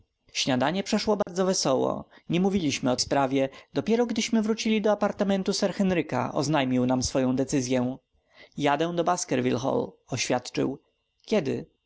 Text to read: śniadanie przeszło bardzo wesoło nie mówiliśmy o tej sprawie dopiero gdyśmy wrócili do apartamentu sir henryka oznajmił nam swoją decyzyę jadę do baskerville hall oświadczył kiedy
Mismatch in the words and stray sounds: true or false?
true